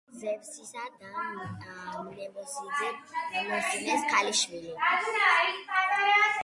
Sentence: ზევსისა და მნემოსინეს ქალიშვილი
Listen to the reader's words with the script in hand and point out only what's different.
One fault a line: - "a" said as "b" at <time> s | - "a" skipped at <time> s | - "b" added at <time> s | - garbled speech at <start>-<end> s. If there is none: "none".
none